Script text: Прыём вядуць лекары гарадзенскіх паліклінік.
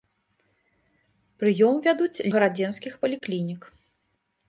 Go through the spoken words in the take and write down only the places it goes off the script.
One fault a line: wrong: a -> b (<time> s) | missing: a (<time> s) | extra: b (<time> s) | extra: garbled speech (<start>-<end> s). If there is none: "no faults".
missing: лекары (2.2 s)